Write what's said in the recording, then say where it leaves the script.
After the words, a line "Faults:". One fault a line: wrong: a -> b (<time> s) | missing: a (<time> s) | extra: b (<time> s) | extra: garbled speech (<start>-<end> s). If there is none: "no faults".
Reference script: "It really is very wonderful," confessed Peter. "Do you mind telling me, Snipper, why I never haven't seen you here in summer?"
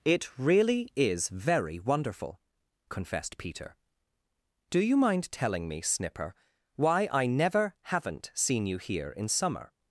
"It really is very wonderful," confessed Peter. "Do you mind telling me, Snipper, why I never haven't seen you here in summer?"
Faults:
no faults